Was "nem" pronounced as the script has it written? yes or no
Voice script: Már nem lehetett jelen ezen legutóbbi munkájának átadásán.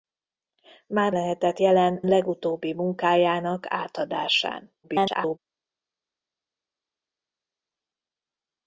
no